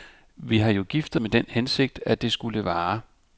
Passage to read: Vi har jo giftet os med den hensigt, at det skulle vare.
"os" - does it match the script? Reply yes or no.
no